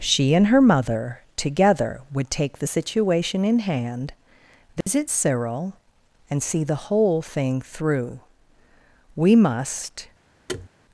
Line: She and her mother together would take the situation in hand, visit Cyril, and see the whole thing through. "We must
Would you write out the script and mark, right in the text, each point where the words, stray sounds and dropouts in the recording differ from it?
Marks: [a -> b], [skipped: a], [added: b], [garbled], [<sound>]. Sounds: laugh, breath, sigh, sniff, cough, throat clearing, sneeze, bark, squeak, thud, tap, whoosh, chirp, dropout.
She and her mother together would take the situation in hand, visit [dropout] Cyril, and see the whole thing through. "We must [thud]